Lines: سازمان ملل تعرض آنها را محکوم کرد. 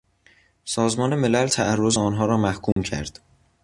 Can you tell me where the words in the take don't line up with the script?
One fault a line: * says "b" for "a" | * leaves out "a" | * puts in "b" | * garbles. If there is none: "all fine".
all fine